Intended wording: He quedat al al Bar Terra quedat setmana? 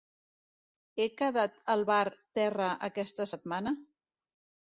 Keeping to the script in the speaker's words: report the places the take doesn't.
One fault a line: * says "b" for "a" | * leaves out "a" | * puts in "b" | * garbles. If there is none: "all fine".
* leaves out "al"
* says "aquesta" for "quedat"